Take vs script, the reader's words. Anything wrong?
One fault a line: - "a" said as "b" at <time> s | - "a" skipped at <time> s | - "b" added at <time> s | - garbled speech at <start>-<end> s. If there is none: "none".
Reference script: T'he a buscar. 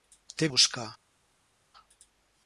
none